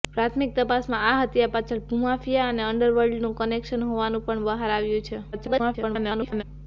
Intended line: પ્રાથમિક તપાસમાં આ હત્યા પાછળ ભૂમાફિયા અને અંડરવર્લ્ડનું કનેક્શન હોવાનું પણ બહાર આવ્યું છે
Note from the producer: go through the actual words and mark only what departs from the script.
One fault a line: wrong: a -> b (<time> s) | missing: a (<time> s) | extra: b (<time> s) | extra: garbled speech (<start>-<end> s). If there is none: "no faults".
extra: garbled speech (5.3-6.4 s)